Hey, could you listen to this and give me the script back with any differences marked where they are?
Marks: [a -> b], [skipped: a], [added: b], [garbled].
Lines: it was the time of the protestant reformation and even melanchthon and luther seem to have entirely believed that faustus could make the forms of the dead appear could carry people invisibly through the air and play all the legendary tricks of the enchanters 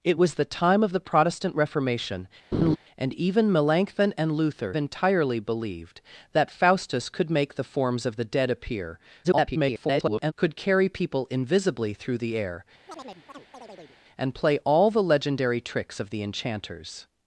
it was the time of the protestant reformation and even melanchthon and luther [skipped: seem to have] entirely believed that faustus could make the forms of the dead appear [garbled] could carry people invisibly through the air and play all the legendary tricks of the enchanters